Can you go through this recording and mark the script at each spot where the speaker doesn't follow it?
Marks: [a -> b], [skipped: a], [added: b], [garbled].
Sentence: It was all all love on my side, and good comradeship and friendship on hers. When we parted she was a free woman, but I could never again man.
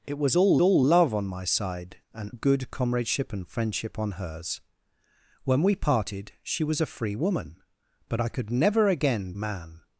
It was all all love on my side, and good comradeship and friendship on hers. When we parted she was a free woman, but I could never again man.